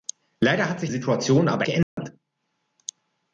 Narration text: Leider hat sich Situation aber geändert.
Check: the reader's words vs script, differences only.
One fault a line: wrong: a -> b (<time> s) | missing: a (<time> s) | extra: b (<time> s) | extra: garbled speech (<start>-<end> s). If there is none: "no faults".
no faults